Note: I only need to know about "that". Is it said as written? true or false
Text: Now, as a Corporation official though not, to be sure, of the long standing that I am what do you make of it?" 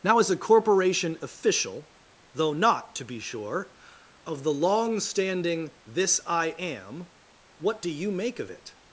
false